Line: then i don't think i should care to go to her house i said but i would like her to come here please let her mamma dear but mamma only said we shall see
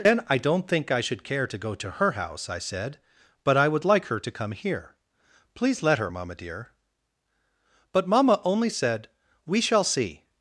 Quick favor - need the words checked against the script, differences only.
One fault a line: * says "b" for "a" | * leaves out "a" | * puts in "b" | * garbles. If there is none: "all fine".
all fine